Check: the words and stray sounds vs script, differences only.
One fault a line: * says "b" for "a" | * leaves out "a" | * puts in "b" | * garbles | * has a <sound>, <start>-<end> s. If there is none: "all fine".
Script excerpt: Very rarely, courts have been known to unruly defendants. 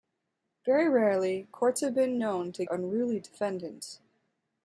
all fine